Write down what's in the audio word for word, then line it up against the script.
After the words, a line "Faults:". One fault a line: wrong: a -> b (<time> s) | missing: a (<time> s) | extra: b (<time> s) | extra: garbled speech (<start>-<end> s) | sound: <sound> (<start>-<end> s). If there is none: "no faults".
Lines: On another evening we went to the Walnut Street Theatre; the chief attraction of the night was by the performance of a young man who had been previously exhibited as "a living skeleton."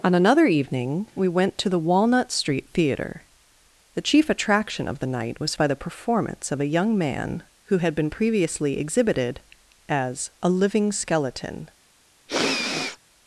On another evening we went to the Walnut Street Theatre; the chief attraction of the night was by the performance of a young man who had been previously exhibited as "a living skeleton."
Faults:
sound: sniff (12.3-13.0 s)